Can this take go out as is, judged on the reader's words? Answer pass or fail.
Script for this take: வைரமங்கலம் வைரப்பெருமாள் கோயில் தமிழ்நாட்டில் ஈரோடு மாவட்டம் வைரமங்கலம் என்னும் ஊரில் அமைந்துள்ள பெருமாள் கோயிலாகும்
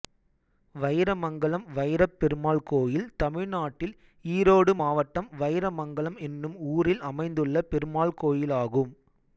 pass